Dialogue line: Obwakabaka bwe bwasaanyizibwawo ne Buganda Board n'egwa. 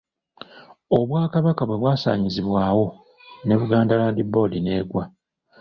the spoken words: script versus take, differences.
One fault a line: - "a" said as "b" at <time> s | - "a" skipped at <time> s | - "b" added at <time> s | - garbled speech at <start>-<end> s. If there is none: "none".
- "Land" added at 4.0 s